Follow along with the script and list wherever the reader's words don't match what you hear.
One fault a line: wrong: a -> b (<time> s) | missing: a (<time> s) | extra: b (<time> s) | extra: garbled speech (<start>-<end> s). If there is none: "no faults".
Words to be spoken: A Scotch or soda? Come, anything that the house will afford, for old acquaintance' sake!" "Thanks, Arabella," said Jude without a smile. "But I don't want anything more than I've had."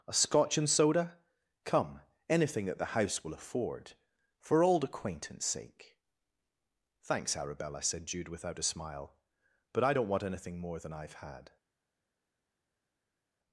wrong: or -> and (0.6 s)